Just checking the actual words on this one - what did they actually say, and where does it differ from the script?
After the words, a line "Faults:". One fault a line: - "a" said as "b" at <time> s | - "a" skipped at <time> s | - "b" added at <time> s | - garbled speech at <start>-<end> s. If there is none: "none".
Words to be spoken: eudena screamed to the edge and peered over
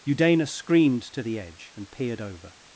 eudena screamed to the edge and peered over
Faults:
none